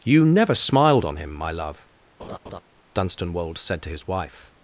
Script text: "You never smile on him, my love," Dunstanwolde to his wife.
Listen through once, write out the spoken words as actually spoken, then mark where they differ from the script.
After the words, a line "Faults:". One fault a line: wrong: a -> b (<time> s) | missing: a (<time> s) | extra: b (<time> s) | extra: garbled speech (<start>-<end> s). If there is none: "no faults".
"You never smiled on him, my love," Dunstanwolde said to his wife.
Faults:
wrong: smile -> smiled (0.6 s)
extra: said (3.6 s)